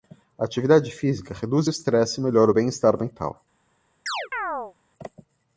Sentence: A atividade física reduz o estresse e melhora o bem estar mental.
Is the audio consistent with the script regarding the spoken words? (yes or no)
yes